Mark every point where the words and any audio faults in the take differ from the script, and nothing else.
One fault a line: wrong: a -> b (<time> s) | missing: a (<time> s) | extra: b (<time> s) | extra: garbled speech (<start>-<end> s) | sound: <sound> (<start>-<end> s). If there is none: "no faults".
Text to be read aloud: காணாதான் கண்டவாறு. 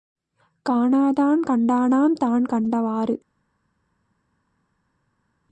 extra: கண்டானாம் தான் (1.5 s)